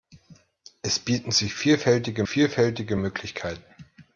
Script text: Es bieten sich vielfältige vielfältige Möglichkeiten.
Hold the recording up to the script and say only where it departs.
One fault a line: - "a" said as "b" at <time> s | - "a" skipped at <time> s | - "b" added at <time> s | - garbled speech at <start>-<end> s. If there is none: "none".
none